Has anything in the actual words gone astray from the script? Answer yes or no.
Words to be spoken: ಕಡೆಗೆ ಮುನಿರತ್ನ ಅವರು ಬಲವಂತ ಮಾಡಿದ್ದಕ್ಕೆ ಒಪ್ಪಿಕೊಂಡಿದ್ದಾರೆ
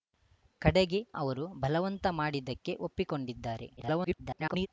yes